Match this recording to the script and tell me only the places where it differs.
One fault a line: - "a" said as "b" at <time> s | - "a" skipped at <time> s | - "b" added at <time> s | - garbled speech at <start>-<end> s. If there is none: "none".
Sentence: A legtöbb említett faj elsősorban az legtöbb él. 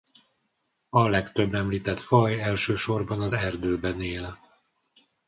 - "legtöbb" said as "erdőben" at 3.3 s